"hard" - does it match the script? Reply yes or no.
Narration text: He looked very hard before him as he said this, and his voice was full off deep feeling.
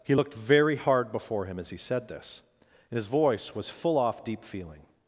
yes